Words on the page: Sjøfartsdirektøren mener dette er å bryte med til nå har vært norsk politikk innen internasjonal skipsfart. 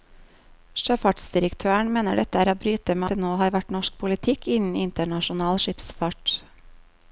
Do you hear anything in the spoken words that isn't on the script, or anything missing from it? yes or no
no